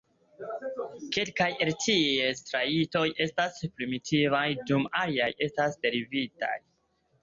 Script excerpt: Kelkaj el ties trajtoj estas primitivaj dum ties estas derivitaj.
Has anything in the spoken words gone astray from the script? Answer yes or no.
yes